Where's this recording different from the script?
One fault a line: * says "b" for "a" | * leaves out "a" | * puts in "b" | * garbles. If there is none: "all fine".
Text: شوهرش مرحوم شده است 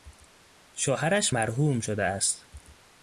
all fine